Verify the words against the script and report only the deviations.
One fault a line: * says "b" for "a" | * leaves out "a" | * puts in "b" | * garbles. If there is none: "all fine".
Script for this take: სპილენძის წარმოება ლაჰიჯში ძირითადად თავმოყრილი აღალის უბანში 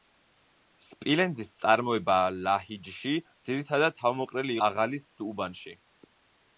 all fine